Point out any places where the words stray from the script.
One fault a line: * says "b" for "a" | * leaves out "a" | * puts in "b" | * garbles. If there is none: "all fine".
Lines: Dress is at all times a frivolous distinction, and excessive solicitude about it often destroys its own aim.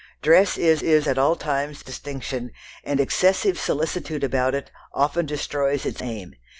* puts in "is"
* leaves out "a frivolous"
* leaves out "own"